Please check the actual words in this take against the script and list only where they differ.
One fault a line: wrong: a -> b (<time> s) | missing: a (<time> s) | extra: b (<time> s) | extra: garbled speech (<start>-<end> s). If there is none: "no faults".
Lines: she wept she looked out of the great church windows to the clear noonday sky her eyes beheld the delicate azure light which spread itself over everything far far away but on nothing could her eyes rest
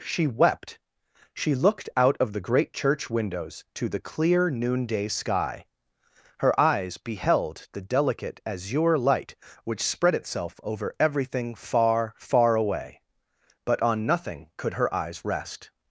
no faults